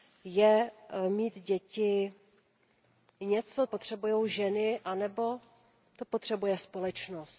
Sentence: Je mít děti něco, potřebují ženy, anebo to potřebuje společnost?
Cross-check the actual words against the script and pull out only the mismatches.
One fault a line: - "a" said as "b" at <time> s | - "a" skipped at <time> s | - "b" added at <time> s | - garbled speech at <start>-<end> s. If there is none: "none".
none